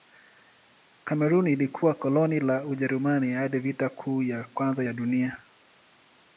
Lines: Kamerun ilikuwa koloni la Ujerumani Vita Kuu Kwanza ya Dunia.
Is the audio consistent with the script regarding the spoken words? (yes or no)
no